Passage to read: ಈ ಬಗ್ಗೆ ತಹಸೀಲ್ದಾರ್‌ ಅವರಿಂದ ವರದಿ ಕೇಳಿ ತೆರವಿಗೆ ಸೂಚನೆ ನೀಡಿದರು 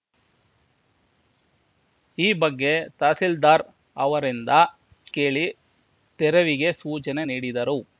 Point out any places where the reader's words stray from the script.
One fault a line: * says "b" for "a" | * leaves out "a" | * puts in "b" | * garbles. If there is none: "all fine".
* leaves out "ವರದಿ"